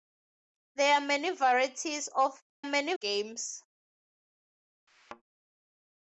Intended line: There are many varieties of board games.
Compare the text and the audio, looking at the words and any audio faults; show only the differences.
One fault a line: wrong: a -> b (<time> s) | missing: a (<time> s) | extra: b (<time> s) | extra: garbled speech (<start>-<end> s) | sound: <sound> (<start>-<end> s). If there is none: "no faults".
wrong: board -> many (2.6 s)
sound: thud (4.9-5.2 s)